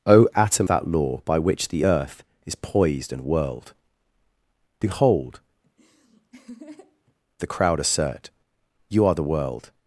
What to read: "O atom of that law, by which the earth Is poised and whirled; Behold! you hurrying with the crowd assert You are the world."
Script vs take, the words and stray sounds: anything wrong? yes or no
yes